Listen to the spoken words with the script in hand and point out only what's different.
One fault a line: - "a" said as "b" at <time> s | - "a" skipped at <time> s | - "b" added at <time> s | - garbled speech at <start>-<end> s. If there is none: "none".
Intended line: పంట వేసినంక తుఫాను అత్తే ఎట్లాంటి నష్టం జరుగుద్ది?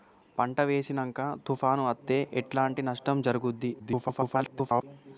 - garbled speech at 3.8-4.8 s